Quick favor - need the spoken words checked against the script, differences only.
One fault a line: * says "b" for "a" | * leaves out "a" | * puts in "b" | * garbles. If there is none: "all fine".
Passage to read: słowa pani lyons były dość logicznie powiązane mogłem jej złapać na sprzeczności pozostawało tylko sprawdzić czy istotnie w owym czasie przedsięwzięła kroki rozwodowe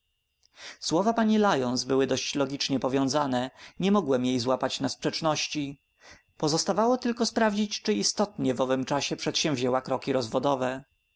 * puts in "nie"